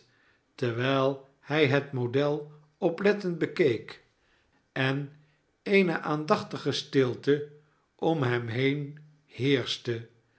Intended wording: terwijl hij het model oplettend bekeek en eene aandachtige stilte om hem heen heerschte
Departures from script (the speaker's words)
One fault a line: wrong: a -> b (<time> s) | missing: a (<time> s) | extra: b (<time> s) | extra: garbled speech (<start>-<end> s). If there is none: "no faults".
no faults